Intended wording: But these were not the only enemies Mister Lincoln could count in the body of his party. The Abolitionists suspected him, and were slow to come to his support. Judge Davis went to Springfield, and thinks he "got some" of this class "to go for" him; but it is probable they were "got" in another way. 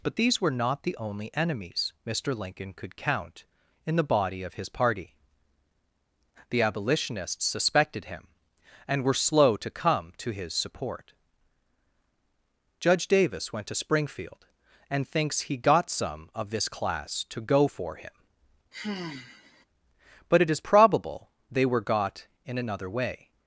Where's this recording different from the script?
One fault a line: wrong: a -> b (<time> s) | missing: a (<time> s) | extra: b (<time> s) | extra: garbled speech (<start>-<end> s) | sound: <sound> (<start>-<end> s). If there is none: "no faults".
sound: sigh (18.7-19.7 s)